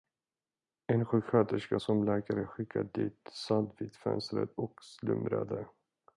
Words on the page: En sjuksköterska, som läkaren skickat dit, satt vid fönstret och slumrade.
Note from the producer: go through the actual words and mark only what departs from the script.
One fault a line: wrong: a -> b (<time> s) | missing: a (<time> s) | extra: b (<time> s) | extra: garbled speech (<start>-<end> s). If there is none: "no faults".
no faults